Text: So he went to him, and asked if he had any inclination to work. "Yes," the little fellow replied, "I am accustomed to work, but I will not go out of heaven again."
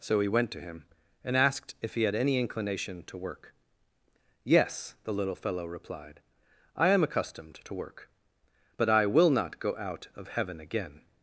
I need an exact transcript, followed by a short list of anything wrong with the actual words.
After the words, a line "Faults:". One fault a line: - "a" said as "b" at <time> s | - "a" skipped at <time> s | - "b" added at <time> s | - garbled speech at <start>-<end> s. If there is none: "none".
So he went to him, and asked if he had any inclination to work. "Yes," the little fellow replied, "I am accustomed to work, but I will not go out of heaven again."
Faults:
none